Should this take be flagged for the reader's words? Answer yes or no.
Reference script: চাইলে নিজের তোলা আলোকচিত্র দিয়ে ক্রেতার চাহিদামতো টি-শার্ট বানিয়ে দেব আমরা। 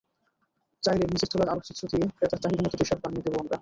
no